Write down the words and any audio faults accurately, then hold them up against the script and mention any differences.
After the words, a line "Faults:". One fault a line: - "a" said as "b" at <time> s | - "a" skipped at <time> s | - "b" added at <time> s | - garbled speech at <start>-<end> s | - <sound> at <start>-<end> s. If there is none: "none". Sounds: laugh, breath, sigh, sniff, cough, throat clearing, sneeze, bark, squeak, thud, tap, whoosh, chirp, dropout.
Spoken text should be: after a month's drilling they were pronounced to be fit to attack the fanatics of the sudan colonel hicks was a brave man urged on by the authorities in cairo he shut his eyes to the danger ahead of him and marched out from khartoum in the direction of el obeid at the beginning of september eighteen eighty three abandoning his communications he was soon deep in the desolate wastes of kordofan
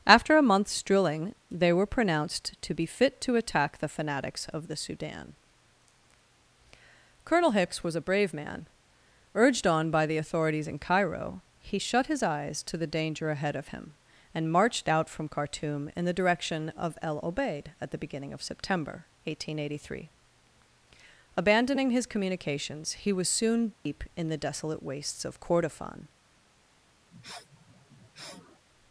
after a month's drilling they were pronounced to be fit to attack the fanatics of the sudan colonel hicks was a brave man urged on by the authorities in cairo he shut his eyes to the danger ahead of him and marched out from khartoum in the direction of el obeid at the beginning of september eighteen eighty three abandoning his communications he was soon deep in the desolate wastes of kordofan
Faults:
- dropout at 23.7-23.9 s
- sniff at 27.1-28.7 s